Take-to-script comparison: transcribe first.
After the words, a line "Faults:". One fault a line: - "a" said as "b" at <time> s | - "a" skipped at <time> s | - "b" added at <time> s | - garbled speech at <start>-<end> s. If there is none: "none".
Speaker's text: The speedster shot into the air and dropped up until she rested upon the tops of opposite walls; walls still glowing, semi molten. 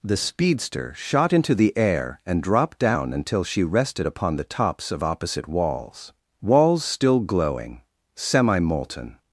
The speedster shot into the air and dropped down until she rested upon the tops of opposite walls; walls still glowing, semi molten.
Faults:
- "up" said as "down" at 2.8 s